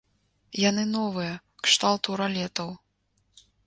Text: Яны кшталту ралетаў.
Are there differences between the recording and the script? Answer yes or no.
yes